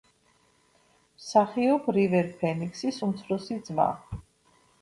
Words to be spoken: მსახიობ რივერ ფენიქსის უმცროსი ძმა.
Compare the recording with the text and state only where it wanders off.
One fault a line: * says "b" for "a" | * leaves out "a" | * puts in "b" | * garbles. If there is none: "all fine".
all fine